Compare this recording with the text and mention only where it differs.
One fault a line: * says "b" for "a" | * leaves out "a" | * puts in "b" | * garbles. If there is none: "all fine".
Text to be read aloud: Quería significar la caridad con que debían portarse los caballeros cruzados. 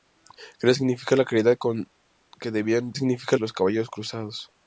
* says "significar" for "portarse"